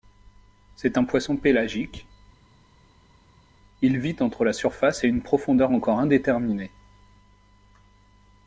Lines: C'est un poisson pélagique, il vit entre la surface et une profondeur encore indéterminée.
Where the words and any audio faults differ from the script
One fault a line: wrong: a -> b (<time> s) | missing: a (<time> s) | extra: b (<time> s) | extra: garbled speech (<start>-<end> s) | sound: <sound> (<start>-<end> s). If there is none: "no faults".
no faults